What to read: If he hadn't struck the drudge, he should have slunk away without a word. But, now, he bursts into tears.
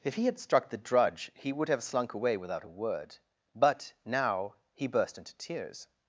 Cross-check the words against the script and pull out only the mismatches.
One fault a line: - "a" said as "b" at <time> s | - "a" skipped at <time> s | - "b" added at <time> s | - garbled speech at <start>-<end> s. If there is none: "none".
- "hadn't" said as "had" at 0.2 s
- "should" said as "would" at 1.5 s
- "bursts" said as "burst" at 4.9 s